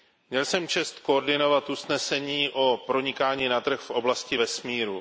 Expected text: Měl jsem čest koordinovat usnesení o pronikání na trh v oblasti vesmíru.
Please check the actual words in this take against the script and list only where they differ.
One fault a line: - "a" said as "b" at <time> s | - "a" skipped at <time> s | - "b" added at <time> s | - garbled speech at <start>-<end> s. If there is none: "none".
none